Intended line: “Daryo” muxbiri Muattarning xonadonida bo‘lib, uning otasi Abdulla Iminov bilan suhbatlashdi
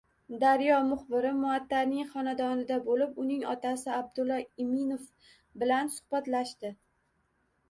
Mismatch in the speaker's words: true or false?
false